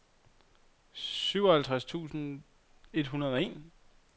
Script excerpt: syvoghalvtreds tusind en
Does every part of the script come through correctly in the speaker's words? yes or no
no